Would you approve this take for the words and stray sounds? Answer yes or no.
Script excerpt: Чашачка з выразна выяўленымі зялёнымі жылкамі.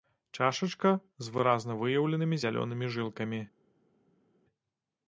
yes